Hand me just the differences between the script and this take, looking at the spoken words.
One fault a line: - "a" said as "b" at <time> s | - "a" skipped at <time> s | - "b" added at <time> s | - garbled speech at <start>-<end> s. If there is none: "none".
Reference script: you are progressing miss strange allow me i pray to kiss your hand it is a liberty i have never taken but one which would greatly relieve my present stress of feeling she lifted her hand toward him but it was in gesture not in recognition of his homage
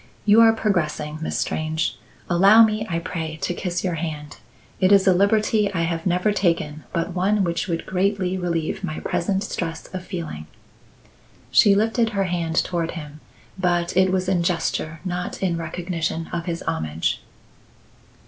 none